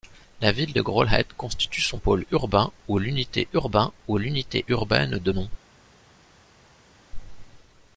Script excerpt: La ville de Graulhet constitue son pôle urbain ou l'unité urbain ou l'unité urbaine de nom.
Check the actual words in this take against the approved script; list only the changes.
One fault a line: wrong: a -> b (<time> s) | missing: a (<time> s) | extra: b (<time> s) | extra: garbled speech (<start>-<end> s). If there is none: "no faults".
no faults